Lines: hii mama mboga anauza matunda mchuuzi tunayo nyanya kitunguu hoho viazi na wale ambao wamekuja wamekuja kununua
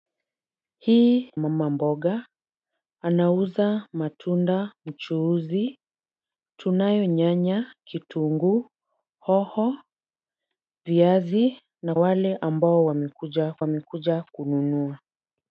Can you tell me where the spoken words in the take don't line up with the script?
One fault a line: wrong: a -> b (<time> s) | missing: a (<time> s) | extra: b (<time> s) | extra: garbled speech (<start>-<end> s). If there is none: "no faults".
no faults